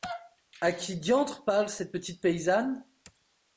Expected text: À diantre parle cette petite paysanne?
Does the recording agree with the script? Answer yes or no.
no